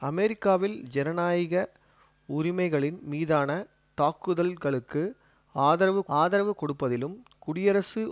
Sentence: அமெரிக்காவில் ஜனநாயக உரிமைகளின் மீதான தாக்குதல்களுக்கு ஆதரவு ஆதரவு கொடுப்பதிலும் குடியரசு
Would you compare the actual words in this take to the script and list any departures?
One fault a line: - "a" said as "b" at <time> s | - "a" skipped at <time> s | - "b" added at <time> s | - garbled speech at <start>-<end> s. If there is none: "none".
none